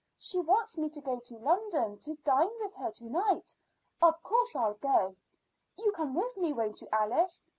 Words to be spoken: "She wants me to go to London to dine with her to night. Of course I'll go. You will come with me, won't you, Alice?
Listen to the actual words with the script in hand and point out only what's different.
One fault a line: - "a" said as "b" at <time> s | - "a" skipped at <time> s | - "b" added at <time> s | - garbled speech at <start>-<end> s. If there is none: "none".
- "will" skipped at 5.9 s